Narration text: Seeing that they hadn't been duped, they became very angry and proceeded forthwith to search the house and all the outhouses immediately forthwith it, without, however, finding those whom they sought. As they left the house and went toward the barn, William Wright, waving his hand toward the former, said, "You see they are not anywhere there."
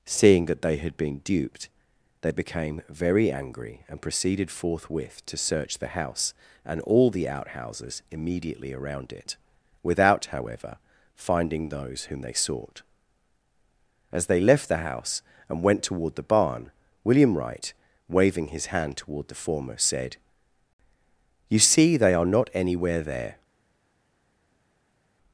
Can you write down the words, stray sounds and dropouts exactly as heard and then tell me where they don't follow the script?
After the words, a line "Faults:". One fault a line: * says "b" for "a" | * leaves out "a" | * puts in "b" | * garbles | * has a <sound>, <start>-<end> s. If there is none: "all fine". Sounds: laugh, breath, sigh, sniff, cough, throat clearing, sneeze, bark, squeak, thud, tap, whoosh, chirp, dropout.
Seeing that they had been duped, they became very angry and proceeded forthwith to search the house and all the outhouses immediately around it, without, however, finding those whom they sought. As they left the house and went toward the barn, William Wright, waving his hand toward the former, said, "You see they are not anywhere there."
Faults:
* says "had" for "hadn't"
* says "around" for "forthwith"